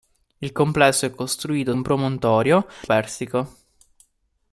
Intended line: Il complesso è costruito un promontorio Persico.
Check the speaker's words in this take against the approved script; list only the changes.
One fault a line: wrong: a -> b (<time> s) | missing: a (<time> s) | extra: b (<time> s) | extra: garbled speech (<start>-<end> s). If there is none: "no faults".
no faults